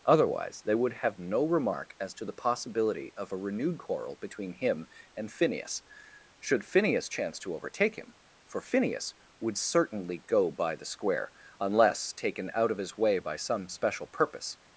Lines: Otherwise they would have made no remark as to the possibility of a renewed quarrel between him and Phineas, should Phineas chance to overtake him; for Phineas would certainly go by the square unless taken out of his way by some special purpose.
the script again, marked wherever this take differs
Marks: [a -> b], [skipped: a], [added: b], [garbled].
Otherwise they would have [skipped: made] no remark as to the possibility of a renewed quarrel between him and Phineas, should Phineas chance to overtake him; for Phineas would certainly go by the square unless taken out of his way by some special purpose.